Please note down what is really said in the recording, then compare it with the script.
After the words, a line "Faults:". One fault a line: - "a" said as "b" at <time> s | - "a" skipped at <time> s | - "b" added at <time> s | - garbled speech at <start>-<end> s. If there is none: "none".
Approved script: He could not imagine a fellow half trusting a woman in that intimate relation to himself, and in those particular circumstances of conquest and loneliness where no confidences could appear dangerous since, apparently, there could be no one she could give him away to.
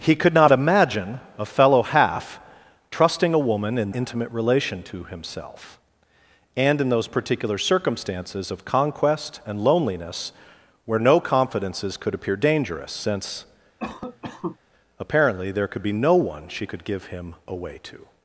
He could not imagine a fellow half trusting a woman in intimate relation to himself, and in those particular circumstances of conquest and loneliness where no confidences could appear dangerous since, apparently, there could be no one she could give him away to.
Faults:
- "that" skipped at 3.9 s